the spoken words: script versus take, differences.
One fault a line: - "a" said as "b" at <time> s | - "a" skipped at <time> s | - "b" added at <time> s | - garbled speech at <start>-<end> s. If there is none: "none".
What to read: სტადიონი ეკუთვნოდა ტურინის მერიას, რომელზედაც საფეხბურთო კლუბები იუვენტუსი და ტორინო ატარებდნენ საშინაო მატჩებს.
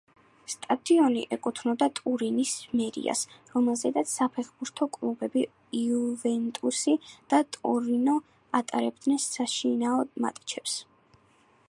none